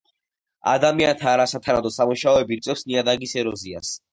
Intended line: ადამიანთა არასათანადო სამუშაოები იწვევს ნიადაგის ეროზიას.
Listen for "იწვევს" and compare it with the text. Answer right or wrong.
right